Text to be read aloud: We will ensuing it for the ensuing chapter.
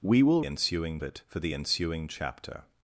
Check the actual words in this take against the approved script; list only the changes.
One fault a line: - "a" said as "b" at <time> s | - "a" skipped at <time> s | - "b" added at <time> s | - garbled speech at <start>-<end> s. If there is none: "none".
none